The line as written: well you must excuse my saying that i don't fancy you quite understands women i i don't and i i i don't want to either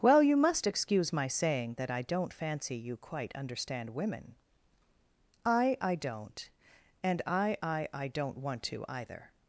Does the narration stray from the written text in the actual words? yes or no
yes